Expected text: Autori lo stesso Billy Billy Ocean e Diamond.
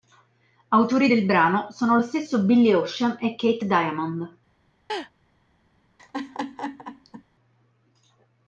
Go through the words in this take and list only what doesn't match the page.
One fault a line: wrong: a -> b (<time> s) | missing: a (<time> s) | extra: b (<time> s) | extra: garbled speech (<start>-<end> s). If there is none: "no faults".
extra: del brano sono (1.1 s)
missing: Billy (2.7 s)
extra: Keith (3.3 s)